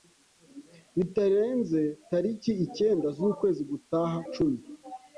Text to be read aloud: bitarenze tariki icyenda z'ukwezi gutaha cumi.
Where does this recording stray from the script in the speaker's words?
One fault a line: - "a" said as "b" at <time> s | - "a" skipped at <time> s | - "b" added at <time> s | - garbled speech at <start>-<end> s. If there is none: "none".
none